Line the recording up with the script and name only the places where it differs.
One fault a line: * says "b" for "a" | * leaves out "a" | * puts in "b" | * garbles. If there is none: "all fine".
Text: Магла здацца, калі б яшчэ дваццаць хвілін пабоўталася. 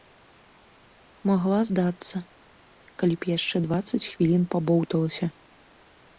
all fine